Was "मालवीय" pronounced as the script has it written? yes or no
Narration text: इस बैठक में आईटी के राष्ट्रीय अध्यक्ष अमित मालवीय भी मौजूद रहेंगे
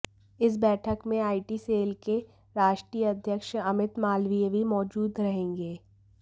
yes